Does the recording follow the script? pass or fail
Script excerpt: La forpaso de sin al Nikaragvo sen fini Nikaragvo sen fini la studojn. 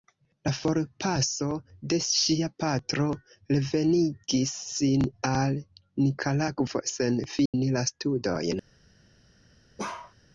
fail